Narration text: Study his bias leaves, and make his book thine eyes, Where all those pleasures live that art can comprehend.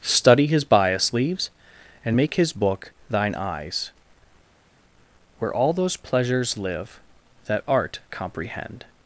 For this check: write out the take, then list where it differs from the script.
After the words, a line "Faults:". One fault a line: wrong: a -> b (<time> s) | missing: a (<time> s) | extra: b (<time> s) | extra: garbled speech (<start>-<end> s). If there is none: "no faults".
Study his bias leaves, and make his book thine eyes, Where all those pleasures live that art comprehend.
Faults:
missing: can (8.0 s)